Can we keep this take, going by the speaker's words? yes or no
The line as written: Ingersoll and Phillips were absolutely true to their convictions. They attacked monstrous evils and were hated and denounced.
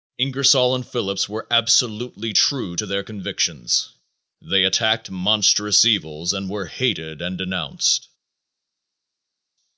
yes